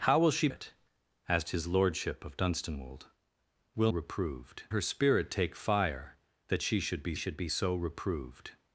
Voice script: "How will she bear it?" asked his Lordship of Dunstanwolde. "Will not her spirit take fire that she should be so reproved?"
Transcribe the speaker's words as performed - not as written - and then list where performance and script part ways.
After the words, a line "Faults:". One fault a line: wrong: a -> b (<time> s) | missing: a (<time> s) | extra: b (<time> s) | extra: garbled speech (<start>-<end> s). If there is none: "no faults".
"How will she it?" asked his Lordship of Dunstanwolde. "Will reproved her spirit take fire that she should be should be so reproved?"
Faults:
missing: bear (0.5 s)
wrong: not -> reproved (3.9 s)
extra: should be (7.1 s)